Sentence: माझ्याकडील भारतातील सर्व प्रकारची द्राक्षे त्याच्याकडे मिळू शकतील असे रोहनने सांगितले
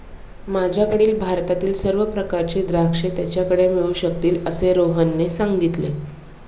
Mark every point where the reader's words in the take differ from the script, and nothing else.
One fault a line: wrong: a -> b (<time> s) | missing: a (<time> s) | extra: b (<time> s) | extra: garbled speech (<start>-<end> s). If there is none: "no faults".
no faults